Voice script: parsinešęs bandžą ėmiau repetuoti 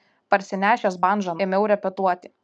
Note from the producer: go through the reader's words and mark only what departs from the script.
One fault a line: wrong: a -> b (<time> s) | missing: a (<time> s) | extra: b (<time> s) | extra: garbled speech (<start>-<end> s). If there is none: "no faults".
no faults